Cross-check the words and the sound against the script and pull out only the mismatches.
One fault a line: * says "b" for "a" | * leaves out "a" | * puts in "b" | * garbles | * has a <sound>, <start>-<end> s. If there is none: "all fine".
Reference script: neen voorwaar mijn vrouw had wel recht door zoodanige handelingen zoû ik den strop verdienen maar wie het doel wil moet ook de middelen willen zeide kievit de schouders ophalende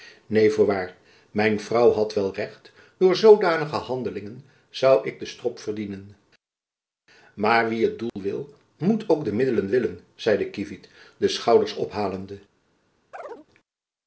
* has a dropout, 8.1-8.2 s
* has a chirp, 13.1-13.5 s